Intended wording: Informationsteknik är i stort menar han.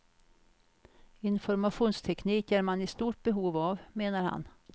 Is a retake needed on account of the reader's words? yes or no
yes